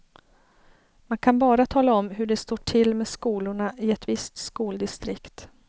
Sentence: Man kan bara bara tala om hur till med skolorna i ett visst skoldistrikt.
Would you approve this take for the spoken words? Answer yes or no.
no